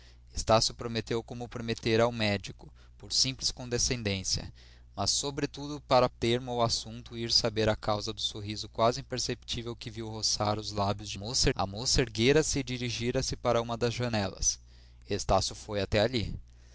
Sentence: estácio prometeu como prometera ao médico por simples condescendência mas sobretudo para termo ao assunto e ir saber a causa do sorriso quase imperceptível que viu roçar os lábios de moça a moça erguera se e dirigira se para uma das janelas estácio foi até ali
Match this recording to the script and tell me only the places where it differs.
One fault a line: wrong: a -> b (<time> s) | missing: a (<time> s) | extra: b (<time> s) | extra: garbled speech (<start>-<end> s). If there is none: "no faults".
no faults